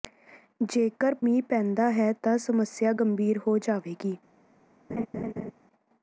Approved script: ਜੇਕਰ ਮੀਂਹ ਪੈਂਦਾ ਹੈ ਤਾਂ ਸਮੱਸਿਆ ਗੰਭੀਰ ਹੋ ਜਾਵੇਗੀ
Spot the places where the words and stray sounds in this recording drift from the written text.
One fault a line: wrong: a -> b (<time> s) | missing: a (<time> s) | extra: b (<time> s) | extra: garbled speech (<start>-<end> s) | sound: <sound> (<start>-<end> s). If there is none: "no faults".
sound: laugh (4.9-5.5 s)